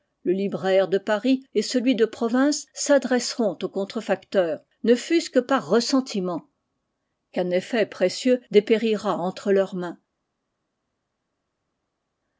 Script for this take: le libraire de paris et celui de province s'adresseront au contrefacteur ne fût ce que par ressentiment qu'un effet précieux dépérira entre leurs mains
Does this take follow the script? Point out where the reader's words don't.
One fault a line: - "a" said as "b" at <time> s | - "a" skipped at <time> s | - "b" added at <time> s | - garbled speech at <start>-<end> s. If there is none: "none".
none